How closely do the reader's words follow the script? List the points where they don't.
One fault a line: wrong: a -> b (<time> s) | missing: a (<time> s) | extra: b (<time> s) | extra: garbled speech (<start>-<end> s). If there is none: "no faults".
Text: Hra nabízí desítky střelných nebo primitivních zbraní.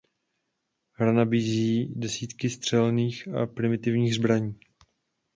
wrong: nebo -> a (3.3 s)